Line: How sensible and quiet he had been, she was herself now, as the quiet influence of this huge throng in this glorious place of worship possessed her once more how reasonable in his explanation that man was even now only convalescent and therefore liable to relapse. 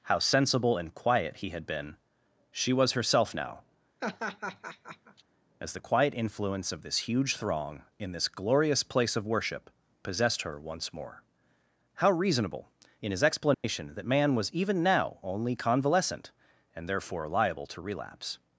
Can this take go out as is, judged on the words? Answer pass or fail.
pass